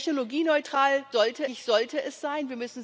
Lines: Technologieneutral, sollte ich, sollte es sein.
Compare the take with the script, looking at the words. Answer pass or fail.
pass